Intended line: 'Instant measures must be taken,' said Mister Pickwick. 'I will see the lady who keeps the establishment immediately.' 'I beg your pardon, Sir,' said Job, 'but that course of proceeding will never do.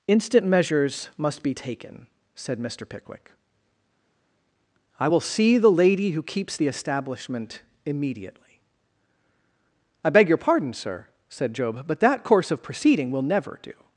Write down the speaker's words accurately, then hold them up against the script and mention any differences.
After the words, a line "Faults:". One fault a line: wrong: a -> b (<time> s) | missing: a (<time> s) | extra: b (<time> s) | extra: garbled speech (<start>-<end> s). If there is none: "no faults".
'Instant measures must be taken,' said Mister Pickwick. 'I will see the lady who keeps the establishment immediately.' 'I beg your pardon, Sir,' said Job, 'but that course of proceeding will never do.
Faults:
no faults